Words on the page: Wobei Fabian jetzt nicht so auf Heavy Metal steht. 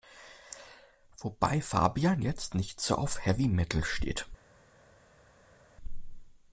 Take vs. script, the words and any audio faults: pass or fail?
pass